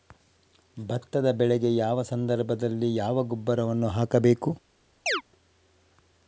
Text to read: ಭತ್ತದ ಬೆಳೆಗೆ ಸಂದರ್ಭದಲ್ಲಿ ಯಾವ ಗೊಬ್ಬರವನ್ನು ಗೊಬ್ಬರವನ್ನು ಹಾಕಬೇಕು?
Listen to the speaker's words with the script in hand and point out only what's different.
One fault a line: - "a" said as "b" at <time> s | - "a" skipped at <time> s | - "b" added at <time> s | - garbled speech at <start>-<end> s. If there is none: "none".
- "ಯಾವ" added at 1.8 s
- "ಗೊಬ್ಬರವನ್ನು" skipped at 3.9 s